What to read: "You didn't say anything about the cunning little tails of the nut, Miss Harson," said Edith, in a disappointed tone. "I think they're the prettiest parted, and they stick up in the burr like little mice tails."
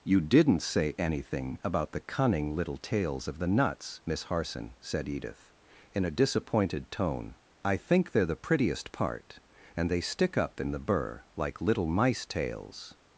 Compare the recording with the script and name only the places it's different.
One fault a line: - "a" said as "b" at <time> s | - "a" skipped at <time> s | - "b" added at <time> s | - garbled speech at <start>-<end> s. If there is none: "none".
- "nut" said as "nuts" at 3.5 s
- "parted" said as "part" at 8.9 s